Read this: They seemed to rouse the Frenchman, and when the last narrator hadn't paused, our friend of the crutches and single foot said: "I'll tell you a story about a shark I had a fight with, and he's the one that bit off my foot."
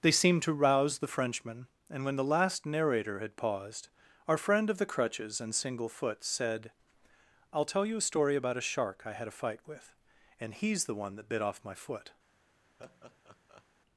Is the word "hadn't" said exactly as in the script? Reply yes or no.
no